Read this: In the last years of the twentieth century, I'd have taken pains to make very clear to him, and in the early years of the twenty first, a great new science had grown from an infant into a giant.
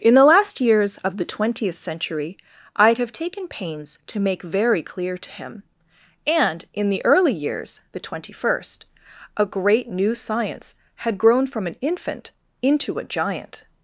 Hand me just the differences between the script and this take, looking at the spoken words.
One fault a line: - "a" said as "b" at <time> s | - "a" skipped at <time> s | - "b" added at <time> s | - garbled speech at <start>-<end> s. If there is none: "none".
- "of" skipped at 7.8 s